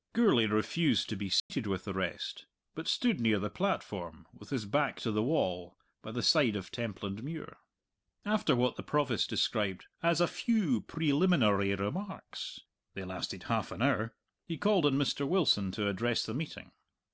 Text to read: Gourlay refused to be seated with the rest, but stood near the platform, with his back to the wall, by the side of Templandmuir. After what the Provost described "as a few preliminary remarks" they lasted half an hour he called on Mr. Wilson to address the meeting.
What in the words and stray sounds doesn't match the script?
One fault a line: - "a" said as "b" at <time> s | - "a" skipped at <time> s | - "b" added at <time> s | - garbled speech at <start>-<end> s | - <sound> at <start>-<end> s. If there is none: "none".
- dropout at 1.4-1.5 s